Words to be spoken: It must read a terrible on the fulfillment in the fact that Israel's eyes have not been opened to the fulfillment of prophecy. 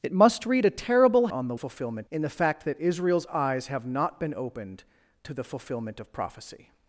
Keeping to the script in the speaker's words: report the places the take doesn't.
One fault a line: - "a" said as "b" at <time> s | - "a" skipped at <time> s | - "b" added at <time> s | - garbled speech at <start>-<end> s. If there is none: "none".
none